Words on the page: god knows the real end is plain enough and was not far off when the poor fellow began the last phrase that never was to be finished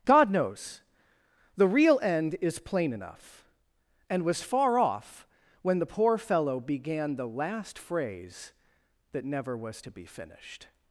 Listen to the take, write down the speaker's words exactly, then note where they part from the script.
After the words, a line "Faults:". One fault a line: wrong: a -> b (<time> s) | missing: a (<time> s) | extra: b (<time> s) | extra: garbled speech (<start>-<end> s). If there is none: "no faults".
god knows the real end is plain enough and was far off when the poor fellow began the last phrase that never was to be finished
Faults:
missing: not (4.4 s)